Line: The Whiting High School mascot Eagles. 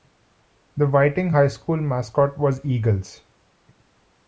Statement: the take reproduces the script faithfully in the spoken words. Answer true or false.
false